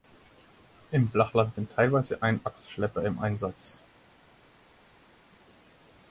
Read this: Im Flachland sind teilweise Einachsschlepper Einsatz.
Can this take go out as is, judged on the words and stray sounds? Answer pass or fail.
fail